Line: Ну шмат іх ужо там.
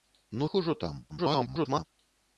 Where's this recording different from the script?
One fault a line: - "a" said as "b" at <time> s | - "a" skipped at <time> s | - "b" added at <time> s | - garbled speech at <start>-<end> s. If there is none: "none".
- "шмат" skipped at 0.5 s
- garbled speech at 1.1-1.8 s